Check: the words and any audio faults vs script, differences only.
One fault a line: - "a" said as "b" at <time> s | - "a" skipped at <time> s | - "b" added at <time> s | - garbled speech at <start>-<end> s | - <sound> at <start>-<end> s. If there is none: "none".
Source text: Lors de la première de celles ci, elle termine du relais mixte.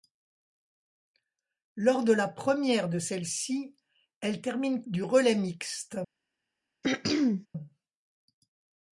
- throat clearing at 6.8-7.5 s